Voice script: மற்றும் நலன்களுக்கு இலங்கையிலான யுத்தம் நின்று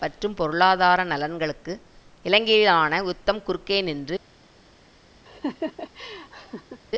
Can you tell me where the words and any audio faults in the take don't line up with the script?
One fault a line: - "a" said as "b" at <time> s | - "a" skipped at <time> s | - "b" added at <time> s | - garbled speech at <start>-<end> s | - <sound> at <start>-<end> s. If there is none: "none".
- "பொருளாதார" added at 0.3 s
- "குறுக்கே" added at 3.4 s
- laugh at 5.3-6.8 s